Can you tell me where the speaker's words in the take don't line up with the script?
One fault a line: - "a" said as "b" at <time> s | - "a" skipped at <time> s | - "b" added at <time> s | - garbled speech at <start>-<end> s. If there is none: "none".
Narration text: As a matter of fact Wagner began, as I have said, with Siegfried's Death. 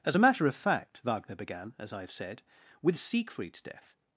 none